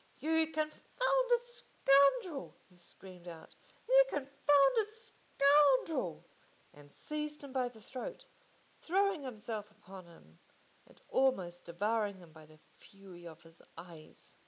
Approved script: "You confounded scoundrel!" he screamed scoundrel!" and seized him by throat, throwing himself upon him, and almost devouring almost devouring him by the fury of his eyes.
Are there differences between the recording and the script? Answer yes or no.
yes